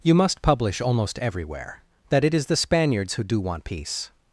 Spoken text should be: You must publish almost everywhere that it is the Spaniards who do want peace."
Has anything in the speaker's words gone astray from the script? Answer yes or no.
no